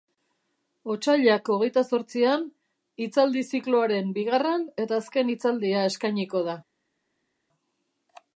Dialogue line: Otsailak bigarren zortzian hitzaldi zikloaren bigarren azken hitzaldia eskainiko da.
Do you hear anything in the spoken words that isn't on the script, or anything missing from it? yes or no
yes